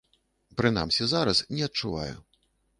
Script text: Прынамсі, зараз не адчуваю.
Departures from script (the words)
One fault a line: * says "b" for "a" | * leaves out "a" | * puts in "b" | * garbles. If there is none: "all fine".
all fine